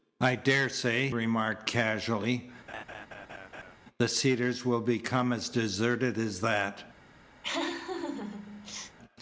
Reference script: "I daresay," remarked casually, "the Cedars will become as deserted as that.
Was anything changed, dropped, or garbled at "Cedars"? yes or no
no